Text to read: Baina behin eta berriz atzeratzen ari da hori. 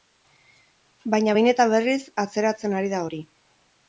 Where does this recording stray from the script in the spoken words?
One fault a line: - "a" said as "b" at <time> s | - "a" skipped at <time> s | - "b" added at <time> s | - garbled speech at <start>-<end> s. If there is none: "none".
none